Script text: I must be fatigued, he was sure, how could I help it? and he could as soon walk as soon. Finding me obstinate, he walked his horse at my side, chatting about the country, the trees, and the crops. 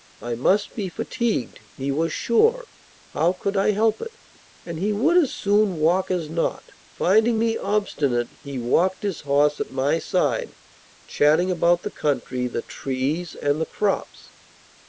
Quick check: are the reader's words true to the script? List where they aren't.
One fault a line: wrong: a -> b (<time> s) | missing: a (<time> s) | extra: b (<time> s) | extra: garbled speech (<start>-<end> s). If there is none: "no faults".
wrong: could -> would (4.9 s)
wrong: soon -> not (6.3 s)